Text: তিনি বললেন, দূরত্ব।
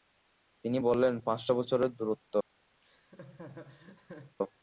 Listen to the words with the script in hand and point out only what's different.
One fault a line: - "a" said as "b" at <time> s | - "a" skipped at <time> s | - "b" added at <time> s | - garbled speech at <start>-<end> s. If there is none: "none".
- "পাঁচশ বছরের" added at 1.2 s